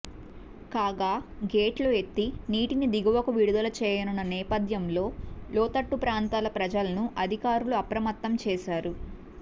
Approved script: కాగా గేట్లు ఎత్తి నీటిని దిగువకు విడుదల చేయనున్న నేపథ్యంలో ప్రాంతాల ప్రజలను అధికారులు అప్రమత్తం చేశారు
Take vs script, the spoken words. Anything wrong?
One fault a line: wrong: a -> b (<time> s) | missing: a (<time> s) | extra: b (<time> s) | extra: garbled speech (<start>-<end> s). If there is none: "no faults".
extra: లోతట్టు (5.5 s)